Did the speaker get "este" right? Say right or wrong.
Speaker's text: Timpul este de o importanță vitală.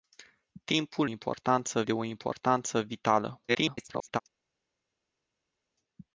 wrong